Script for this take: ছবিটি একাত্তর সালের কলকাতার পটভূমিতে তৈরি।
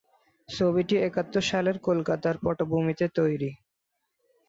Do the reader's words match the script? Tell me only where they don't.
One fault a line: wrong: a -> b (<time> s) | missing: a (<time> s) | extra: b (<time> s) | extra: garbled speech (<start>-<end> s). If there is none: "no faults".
no faults